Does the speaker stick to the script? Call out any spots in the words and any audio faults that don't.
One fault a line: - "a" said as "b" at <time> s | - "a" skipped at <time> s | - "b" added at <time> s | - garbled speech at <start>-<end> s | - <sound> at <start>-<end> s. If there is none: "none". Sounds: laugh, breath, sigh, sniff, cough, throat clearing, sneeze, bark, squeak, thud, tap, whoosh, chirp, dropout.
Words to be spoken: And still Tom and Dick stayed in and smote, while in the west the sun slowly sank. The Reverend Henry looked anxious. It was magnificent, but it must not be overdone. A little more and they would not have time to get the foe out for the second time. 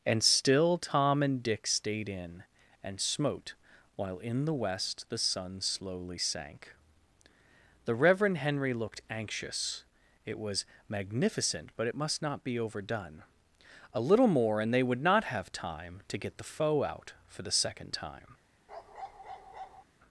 - bark at 18.7-19.8 s